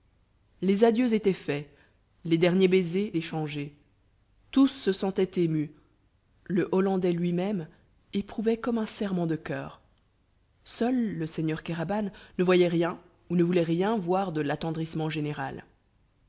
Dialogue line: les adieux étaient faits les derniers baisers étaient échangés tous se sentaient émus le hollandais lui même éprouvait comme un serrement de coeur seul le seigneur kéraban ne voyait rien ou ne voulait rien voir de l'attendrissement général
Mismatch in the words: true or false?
true